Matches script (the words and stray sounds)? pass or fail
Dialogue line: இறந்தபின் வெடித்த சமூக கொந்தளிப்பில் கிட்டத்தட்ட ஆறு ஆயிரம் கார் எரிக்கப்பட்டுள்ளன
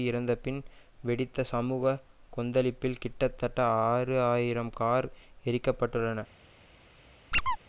fail